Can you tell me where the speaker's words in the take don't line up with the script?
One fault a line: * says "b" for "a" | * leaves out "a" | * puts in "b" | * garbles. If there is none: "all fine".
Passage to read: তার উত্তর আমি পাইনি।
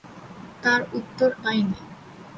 * leaves out "আমি"